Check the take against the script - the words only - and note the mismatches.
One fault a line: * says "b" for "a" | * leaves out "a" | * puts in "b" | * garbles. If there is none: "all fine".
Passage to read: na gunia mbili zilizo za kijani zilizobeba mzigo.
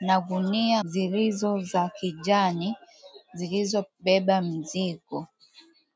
* leaves out "mbili"